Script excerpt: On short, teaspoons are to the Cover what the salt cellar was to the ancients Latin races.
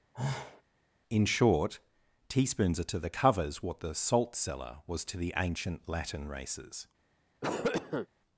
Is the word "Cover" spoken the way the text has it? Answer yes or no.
no